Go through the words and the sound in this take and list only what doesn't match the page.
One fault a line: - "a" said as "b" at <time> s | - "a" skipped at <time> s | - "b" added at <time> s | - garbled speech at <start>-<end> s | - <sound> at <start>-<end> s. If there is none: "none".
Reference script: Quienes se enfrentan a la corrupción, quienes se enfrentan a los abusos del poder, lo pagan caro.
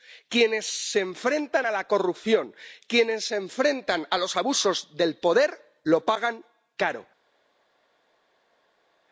none